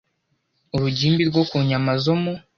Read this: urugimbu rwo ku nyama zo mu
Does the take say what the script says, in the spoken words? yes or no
yes